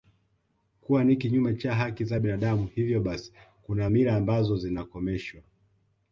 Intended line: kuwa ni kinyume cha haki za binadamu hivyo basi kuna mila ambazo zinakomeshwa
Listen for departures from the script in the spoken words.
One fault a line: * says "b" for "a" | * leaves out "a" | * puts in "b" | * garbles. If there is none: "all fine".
all fine